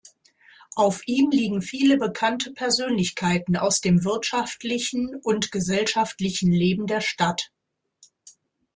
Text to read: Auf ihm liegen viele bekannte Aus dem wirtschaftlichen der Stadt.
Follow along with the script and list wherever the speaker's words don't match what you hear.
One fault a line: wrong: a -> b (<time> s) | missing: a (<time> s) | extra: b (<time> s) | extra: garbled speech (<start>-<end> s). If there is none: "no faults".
extra: Persönlichkeiten (2.5 s)
extra: und gesellschaftlichen Leben (5.2 s)